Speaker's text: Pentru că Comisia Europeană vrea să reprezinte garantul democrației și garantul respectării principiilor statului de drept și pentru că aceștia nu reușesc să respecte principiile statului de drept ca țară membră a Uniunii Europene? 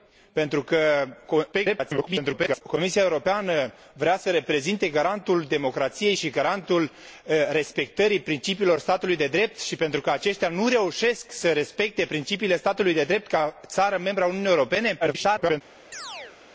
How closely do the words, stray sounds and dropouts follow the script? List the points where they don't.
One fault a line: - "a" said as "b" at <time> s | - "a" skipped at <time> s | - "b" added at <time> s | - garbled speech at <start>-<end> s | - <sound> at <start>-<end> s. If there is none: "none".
- garbled speech at 1.5-2.6 s
- garbled speech at 15.0-15.6 s
- chirp at 15.9-16.4 s